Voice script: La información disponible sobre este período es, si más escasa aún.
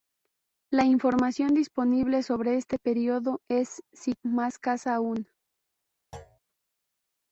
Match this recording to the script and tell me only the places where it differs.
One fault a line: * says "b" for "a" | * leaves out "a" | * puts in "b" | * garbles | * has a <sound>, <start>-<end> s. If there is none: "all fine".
* has a thud, 6.1-6.4 s